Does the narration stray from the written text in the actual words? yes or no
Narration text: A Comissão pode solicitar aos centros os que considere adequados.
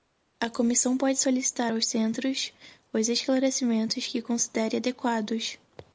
yes